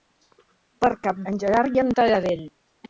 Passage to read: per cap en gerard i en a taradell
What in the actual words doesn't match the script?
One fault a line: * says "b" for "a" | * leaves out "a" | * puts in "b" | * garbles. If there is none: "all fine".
all fine